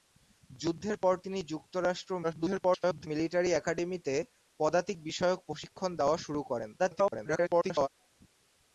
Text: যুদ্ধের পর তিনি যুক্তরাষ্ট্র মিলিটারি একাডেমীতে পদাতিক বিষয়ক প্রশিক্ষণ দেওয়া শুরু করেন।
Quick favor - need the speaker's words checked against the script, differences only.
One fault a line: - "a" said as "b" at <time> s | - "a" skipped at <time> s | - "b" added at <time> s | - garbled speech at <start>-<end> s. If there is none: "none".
- garbled speech at 2.2-3.1 s
- garbled speech at 6.8-7.9 s